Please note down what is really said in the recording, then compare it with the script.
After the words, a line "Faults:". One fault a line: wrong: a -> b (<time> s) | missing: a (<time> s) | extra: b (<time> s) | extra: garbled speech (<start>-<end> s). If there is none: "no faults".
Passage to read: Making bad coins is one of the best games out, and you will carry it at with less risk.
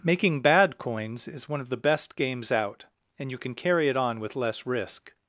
Making bad coins is one of the best games out, and you can carry it on with less risk.
Faults:
wrong: will -> can (3.4 s)
wrong: at -> on (4.0 s)